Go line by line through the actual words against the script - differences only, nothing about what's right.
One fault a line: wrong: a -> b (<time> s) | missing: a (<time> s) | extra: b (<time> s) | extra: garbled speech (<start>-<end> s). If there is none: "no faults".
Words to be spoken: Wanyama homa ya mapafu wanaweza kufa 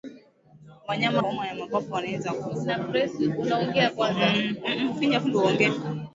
no faults